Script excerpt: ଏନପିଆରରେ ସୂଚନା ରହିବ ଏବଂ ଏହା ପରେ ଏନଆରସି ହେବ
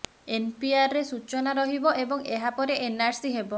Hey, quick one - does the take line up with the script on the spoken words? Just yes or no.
yes